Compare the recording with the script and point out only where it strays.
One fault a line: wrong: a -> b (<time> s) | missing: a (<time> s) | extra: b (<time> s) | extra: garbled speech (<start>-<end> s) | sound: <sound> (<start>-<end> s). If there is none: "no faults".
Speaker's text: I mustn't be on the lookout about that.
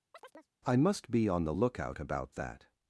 sound: chirp (0.1-0.5 s)
wrong: mustn't -> must (0.8 s)